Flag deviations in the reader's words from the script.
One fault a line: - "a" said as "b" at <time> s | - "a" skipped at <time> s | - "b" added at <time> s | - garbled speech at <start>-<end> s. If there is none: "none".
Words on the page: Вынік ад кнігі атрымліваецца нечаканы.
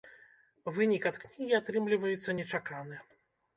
none